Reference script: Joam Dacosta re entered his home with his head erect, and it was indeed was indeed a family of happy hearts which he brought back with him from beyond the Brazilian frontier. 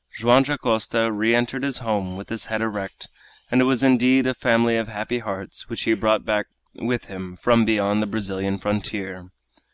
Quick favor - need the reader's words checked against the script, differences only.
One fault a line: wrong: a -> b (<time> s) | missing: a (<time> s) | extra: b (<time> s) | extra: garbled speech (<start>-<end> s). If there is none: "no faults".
missing: was indeed (4.2 s)